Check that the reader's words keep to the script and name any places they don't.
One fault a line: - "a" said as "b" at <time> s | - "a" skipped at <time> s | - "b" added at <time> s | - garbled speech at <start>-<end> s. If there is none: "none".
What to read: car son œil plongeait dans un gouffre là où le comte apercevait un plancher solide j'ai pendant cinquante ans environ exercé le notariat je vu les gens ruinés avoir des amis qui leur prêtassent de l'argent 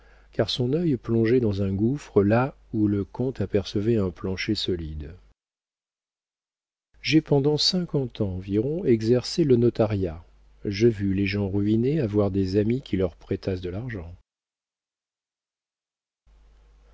none